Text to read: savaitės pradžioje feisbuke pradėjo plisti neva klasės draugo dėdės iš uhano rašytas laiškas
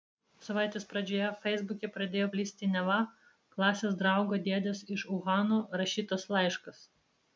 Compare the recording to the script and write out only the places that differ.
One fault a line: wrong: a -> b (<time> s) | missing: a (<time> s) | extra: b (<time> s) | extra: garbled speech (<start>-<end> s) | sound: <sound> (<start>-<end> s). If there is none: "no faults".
no faults